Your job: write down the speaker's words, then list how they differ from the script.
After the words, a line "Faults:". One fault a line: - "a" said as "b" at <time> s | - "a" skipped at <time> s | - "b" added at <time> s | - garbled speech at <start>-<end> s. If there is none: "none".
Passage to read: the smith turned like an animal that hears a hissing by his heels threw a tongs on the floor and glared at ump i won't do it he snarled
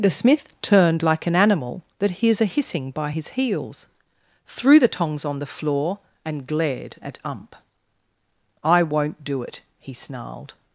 the smith turned like an animal that hears a hissing by his heels threw the tongs on the floor and glared at ump i won't do it he snarled
Faults:
- "a" said as "the" at 4.8 s